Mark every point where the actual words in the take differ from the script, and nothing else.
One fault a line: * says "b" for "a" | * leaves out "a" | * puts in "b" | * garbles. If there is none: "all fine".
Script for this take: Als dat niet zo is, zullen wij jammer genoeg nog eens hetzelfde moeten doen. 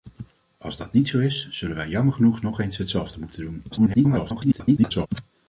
* garbles